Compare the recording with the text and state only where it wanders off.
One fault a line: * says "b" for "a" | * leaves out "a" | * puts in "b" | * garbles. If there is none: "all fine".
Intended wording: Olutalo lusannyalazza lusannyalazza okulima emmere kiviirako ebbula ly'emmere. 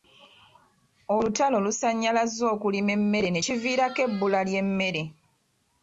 * leaves out "lusannyalazza"
* puts in "ne"